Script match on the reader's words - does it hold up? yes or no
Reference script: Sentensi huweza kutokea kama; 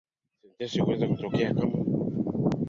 yes